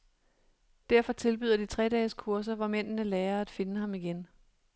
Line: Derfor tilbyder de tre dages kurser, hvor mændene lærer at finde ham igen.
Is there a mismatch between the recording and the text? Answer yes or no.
no